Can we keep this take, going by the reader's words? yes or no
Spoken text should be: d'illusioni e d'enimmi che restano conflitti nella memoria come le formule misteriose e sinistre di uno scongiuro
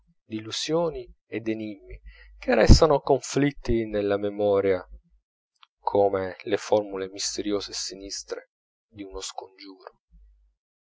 yes